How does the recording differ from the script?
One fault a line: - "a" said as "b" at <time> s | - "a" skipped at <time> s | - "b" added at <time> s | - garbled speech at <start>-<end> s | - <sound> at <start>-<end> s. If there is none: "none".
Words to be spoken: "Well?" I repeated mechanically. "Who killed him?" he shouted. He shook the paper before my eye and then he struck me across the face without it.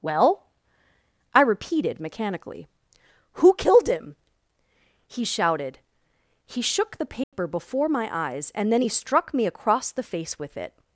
- dropout at 7.2-7.3 s
- "eye" said as "eyes" at 8.1 s
- "without" said as "with" at 10.4 s